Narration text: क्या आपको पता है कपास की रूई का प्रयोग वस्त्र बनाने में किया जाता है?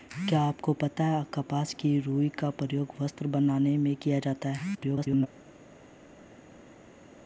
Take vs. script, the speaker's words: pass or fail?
fail